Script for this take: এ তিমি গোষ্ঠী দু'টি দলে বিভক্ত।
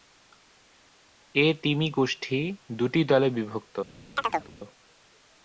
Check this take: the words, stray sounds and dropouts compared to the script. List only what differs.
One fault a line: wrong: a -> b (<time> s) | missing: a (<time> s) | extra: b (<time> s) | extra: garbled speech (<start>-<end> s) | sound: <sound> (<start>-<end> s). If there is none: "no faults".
sound: chirp (4.2-4.5 s)